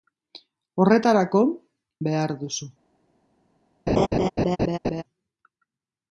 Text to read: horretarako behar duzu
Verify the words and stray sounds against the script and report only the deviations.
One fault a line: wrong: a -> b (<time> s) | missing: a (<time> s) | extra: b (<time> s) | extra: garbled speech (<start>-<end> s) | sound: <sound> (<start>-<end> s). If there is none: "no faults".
sound: laugh (3.9-5.0 s)